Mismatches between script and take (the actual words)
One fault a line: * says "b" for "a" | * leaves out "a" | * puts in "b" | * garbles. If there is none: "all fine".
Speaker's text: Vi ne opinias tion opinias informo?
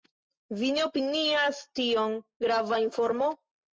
* says "grava" for "opinias"